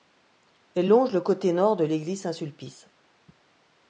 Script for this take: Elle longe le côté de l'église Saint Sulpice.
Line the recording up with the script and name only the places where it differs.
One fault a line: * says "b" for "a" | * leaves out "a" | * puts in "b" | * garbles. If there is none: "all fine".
* puts in "nord"